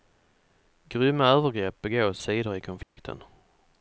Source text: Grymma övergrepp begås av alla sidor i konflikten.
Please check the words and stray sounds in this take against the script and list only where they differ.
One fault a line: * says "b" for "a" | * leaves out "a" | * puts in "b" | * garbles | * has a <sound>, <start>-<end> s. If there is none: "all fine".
* leaves out "av alla"
* has a dropout, 2.8-3.0 s